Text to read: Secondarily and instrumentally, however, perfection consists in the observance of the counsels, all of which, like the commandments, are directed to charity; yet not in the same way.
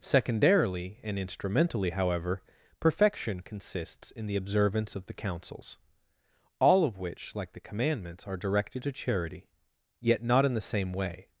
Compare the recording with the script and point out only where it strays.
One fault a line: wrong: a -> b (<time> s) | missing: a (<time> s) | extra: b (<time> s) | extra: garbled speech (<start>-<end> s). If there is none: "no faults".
no faults